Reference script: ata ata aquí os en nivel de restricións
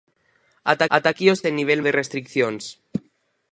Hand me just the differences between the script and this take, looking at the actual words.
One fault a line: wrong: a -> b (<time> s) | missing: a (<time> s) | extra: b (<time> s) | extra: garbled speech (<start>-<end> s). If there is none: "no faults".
no faults